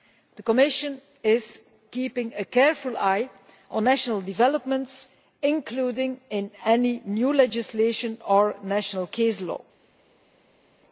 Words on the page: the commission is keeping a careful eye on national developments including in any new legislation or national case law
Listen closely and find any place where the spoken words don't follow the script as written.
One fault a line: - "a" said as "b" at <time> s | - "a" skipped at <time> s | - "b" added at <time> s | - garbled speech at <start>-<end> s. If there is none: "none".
none